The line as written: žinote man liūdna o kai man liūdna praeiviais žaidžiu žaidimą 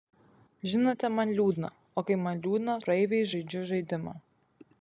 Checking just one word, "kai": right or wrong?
right